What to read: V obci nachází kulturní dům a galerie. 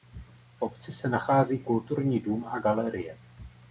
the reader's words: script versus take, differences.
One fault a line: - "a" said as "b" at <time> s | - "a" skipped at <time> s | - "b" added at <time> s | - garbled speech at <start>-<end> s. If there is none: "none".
- "se" added at 0.9 s